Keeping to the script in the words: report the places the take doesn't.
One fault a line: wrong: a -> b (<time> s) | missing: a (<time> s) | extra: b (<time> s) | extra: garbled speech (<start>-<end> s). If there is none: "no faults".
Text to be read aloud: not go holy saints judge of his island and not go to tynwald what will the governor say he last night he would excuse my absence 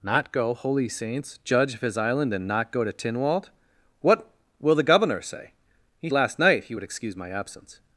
no faults